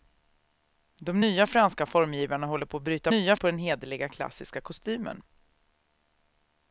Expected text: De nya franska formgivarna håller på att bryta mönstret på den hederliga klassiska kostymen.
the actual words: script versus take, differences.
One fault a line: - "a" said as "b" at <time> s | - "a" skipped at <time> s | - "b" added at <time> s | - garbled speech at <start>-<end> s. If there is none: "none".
- "mönstret" said as "nya" at 3.1 s